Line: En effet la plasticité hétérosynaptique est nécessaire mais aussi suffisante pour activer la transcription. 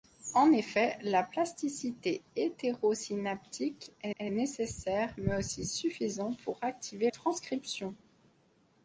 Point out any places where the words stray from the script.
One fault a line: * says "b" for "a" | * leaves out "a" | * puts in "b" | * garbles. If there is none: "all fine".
* puts in "est"
* leaves out "la"